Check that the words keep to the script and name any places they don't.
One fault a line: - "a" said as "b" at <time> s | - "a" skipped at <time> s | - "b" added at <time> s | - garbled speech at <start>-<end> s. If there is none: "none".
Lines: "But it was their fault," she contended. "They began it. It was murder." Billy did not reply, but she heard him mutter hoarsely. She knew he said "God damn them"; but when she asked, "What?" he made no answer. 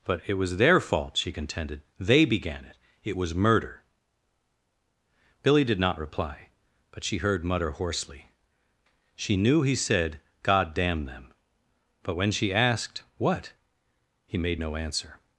- "him" skipped at 7.4 s